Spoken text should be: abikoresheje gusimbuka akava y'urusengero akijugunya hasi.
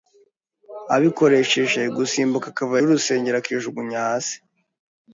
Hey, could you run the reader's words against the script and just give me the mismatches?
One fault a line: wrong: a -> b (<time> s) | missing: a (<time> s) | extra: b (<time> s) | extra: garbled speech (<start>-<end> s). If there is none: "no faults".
no faults